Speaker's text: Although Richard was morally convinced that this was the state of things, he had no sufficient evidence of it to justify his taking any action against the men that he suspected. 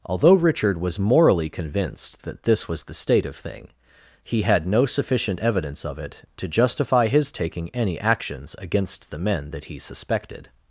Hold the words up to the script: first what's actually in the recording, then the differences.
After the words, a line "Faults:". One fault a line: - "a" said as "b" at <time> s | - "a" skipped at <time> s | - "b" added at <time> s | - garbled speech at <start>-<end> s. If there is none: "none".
Although Richard was morally convinced that this was the state of thing, he had no sufficient evidence of it to justify his taking any actions against the men that he suspected.
Faults:
- "things" said as "thing" at 3.4 s
- "action" said as "actions" at 8.0 s